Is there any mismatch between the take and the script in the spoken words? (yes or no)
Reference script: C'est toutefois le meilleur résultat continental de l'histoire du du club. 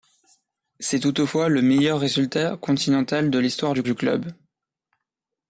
no